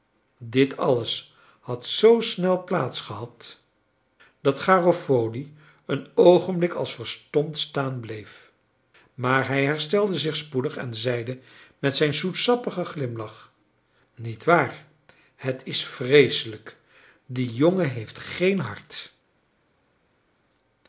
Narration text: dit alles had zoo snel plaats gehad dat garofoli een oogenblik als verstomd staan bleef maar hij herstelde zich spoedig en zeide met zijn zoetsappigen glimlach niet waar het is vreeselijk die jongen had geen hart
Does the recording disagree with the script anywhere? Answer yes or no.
yes